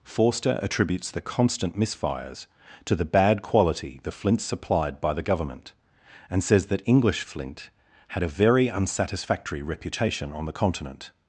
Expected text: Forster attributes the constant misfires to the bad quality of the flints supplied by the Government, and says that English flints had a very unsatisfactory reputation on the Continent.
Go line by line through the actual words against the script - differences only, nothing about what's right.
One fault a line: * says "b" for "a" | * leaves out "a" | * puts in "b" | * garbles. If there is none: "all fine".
* leaves out "of"
* says "flint" for "flints"